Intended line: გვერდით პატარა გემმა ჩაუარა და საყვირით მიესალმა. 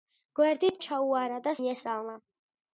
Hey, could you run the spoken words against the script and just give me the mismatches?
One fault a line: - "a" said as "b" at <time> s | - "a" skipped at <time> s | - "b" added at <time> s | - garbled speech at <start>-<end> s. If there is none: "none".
- "პატარა გემმა" skipped at 0.8 s
- "საყვირით" skipped at 1.6 s